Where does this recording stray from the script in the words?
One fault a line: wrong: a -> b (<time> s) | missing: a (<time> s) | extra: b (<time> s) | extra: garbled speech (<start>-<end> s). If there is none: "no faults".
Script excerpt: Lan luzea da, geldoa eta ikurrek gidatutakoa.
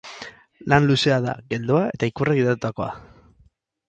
no faults